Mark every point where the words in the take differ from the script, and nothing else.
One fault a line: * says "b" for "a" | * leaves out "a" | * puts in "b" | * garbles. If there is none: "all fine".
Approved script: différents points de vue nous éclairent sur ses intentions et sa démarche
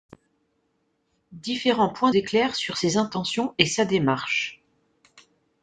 * leaves out "de vue nous"